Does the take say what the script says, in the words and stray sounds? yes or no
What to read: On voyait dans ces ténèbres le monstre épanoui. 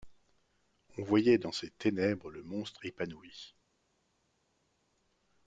yes